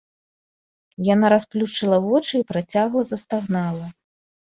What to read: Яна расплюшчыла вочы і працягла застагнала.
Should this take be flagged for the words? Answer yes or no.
no